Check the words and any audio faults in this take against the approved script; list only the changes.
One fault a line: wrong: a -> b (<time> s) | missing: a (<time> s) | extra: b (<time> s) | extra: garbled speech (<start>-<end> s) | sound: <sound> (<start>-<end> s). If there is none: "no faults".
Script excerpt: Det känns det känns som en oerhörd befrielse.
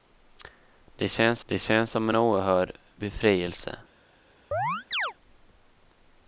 sound: chirp (4.5-5.1 s)